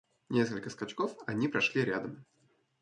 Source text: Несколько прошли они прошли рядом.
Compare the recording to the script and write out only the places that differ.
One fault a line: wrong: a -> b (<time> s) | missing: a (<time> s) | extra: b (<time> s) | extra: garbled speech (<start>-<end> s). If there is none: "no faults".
wrong: прошли -> скачков (0.7 s)